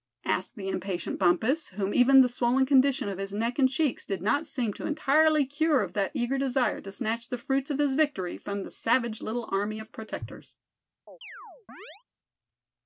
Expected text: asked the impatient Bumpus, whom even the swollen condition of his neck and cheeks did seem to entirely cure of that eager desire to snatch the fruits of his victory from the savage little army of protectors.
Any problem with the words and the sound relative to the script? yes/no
yes